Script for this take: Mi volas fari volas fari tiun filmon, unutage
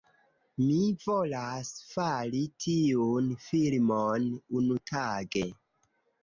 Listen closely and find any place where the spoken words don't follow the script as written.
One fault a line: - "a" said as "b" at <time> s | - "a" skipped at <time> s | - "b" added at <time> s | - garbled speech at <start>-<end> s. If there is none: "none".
- "volas fari" skipped at 2.4 s